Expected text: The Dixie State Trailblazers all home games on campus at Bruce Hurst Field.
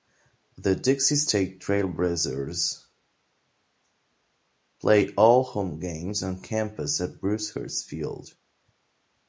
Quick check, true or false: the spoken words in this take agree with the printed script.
false